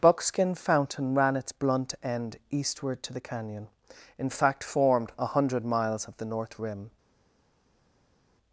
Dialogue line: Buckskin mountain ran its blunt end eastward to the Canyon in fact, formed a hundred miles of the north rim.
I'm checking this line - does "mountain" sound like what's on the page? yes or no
no